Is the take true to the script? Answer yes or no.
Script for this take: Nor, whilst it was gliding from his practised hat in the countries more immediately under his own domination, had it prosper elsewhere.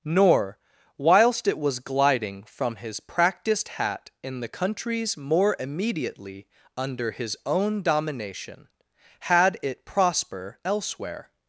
yes